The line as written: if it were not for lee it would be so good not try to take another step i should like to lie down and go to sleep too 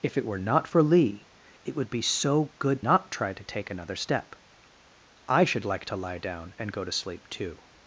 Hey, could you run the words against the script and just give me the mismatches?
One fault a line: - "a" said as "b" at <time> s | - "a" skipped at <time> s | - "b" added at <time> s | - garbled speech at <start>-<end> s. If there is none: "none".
none